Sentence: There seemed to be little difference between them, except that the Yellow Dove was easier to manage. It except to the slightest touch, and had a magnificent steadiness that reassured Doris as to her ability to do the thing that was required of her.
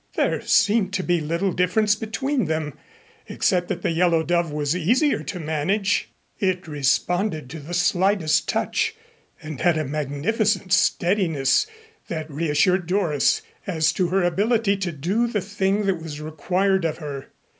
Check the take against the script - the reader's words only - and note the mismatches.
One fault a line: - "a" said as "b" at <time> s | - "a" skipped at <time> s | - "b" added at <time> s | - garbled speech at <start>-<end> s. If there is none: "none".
- "except" said as "responded" at 6.7 s